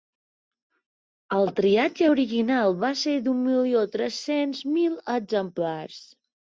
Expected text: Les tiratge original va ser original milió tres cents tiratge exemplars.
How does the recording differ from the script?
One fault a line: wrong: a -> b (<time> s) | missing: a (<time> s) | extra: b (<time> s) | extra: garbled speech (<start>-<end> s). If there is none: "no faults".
wrong: Les -> El (1.4 s)
wrong: original -> d'un (3.3 s)
wrong: tiratge -> mil (4.8 s)